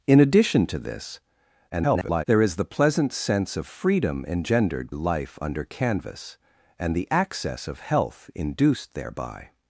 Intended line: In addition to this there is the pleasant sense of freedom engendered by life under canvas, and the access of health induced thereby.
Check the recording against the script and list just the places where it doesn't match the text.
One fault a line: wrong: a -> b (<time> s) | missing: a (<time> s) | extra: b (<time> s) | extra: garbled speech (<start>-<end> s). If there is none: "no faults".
extra: garbled speech (1.7-2.2 s)
missing: by (4.9 s)